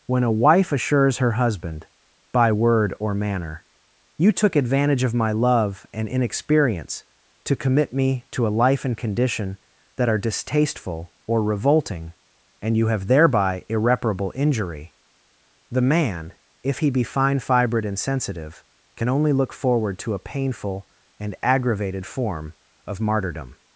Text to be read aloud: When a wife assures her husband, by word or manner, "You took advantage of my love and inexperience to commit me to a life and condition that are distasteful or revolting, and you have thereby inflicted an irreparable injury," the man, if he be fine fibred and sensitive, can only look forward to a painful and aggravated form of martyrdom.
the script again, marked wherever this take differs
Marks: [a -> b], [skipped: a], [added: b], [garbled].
When a wife assures her husband, by word or manner, "You took advantage of my love and inexperience to commit me to a life and condition that are distasteful or revolting, and you have thereby [skipped: inflicted an] irreparable injury," the man, if he be fine fibred and sensitive, can only look forward to a painful and aggravated form of martyrdom.